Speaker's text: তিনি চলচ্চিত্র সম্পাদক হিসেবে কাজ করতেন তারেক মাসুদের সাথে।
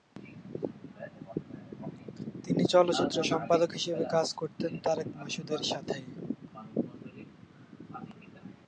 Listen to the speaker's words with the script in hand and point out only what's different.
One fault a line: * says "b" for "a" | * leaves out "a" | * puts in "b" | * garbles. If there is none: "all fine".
all fine